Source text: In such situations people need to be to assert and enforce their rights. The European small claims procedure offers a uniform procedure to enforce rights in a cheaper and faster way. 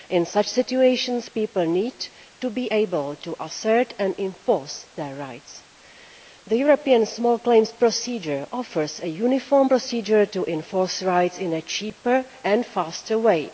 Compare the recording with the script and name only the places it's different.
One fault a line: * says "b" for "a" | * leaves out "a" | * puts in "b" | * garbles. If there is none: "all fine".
* puts in "able"